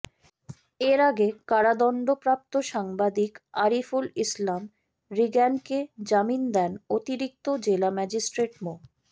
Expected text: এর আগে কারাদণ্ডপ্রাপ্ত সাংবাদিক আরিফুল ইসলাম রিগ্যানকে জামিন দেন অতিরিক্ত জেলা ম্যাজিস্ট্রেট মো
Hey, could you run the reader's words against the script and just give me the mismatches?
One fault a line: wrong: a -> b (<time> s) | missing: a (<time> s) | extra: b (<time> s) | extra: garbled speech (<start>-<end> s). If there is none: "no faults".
no faults